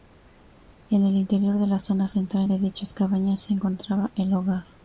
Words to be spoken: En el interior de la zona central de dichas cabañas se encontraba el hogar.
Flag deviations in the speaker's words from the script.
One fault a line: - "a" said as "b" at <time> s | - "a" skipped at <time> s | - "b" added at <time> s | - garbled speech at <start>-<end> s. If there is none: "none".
none